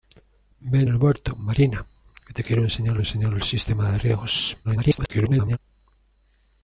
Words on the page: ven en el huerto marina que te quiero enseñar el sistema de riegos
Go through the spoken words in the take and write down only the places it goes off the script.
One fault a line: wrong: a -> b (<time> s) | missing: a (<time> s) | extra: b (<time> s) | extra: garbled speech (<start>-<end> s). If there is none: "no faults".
missing: en (0.9 s)
extra: enseñar (3.0 s)
extra: garbled speech (4.6-5.6 s)